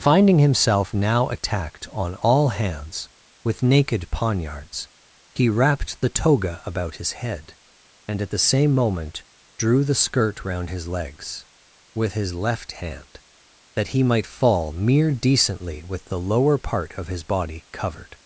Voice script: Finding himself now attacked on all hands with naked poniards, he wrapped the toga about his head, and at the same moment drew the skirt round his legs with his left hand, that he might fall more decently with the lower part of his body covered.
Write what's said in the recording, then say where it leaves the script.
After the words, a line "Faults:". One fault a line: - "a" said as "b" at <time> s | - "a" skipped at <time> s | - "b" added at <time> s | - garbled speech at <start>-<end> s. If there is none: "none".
Finding himself now attacked on all hands with naked poniards, he wrapped the toga about his head, and at the same moment drew the skirt round his legs with his left hand, that he might fall mere decently with the lower part of his body covered.
Faults:
- "more" said as "mere" at 14.7 s